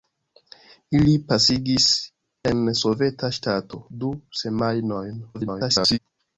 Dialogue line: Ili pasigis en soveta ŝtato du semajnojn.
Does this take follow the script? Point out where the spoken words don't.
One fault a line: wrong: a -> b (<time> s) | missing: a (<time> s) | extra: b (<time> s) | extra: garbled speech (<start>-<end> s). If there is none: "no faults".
extra: garbled speech (5.3-6.0 s)